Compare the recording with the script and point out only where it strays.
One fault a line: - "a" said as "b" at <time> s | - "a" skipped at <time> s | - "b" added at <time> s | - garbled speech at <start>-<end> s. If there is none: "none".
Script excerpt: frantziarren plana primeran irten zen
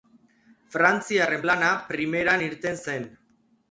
none